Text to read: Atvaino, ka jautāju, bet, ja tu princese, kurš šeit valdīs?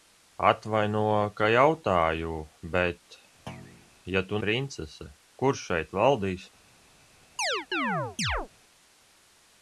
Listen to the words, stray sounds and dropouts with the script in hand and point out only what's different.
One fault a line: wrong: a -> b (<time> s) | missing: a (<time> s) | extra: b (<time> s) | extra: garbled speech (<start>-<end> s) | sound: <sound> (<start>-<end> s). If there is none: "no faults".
sound: thud (3.5-3.9 s)
sound: chirp (7.4-8.5 s)